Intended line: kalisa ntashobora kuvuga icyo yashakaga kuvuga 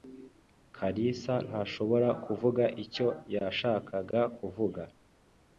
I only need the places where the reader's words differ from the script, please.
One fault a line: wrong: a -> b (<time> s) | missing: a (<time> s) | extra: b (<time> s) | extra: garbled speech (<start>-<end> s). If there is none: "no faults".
no faults